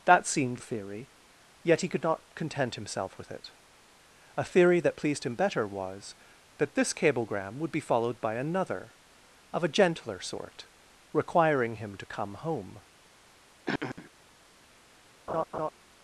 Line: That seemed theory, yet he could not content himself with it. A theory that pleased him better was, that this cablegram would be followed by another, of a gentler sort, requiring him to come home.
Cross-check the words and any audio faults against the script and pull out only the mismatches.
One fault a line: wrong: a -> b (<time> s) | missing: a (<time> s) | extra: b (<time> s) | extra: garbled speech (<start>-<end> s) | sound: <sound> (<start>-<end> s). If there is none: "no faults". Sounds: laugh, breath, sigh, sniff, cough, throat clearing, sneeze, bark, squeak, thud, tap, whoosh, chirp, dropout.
sound: throat clearing (13.7-14.1 s)
sound: laugh (15.3-15.7 s)